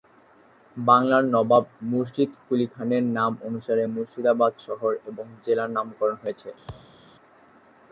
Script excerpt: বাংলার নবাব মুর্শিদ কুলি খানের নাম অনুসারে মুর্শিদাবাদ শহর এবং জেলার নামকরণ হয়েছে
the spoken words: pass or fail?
pass